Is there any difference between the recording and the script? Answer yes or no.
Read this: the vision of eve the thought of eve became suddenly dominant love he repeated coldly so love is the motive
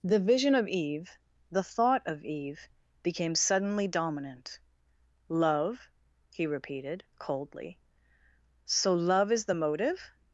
no